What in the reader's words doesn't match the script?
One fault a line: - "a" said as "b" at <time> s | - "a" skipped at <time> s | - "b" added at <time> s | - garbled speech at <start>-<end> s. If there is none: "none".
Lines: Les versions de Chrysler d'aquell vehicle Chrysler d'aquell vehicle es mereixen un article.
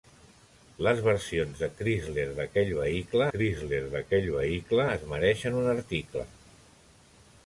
none